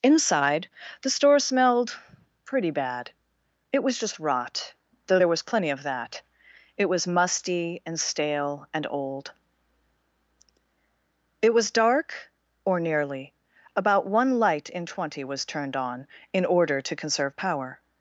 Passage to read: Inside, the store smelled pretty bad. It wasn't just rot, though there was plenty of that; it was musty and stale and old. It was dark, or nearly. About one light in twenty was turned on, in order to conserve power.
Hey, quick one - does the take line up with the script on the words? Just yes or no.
no